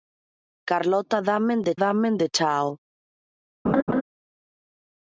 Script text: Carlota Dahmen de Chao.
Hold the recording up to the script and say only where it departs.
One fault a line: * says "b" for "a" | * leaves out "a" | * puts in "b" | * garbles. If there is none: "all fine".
* puts in "Dahmen de"